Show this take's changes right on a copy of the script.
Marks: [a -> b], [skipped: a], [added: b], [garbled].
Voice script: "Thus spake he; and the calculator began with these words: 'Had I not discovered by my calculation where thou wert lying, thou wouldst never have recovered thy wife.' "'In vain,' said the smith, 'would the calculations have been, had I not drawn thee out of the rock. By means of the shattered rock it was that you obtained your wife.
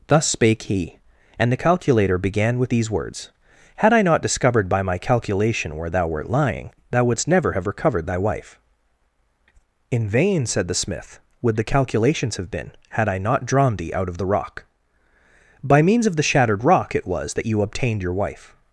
"Thus spake he; and the calculator began with these words: 'Had I not discovered by my calculation where thou wert lying, thou wouldst never have recovered thy wife.' "'In vain,' said the smith, 'would the calculations have been, had I not drawn thee out of the rock. By means of the shattered rock it was that you obtained your wife.